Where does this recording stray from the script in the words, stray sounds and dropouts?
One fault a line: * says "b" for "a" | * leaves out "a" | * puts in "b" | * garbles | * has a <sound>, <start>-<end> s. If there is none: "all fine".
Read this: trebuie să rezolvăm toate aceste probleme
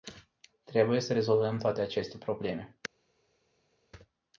all fine